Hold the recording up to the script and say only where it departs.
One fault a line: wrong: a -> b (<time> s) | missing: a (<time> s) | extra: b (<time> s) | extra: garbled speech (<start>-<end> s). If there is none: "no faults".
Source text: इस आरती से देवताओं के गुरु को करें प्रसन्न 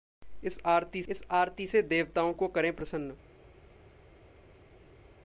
extra: इस आरती (1.1 s)
missing: के गुरु (2.3 s)